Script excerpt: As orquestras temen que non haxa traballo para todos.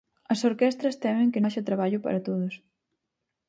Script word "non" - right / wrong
wrong